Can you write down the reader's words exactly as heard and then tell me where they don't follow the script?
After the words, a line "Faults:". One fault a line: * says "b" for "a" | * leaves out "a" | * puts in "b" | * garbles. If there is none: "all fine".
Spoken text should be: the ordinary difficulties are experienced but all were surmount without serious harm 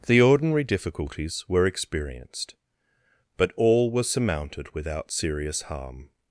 the ordinary difficulties were experienced but all were surmounted without serious harm
Faults:
* says "were" for "are"
* says "surmounted" for "surmount"